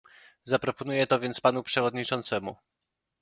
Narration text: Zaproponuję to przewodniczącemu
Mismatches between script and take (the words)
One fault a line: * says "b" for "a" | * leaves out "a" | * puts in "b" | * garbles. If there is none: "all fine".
* puts in "więc panu"